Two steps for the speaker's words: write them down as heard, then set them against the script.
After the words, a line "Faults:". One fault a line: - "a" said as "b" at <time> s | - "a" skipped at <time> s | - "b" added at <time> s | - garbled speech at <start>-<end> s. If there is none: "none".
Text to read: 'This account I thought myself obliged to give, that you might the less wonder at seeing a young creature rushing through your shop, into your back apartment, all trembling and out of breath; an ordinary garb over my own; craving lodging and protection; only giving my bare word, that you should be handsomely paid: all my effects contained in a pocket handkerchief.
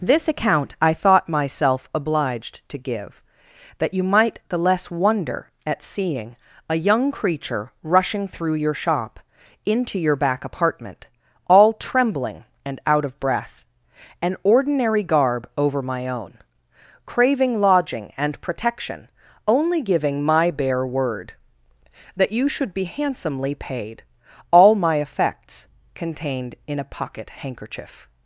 'This account I thought myself obliged to give, that you might the less wonder at seeing a young creature rushing through your shop, into your back apartment, all trembling and out of breath; an ordinary garb over my own; craving lodging and protection; only giving my bare word, that you should be handsomely paid: all my effects contained in a pocket handkerchief.
Faults:
none